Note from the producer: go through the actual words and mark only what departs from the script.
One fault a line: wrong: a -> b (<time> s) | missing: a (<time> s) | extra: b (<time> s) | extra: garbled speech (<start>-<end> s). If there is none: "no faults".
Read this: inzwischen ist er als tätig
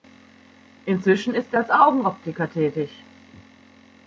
extra: augenoptiker (1.7 s)